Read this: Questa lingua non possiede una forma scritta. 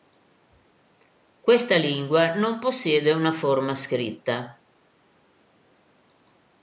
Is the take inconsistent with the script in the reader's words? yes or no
no